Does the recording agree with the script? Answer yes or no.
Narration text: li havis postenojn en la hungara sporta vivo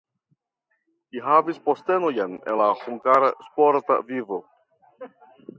yes